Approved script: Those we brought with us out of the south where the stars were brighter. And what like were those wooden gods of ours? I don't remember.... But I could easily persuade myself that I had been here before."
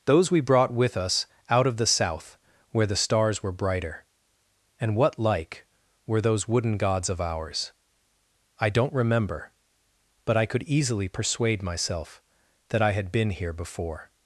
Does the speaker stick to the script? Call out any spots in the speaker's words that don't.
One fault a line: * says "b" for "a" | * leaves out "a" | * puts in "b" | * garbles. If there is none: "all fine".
all fine